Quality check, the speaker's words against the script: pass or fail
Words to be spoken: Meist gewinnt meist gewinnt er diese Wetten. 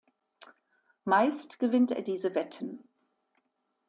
fail